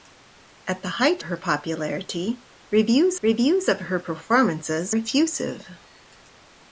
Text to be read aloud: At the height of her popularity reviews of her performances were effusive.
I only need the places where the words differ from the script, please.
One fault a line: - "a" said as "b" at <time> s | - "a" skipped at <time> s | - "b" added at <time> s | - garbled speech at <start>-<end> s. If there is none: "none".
- "of" skipped at 1.2 s
- "reviews" added at 3.2 s
- "were" skipped at 5.0 s